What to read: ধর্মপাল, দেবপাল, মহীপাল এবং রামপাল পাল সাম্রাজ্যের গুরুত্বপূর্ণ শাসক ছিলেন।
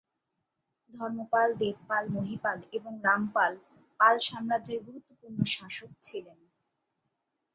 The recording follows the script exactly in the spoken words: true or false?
true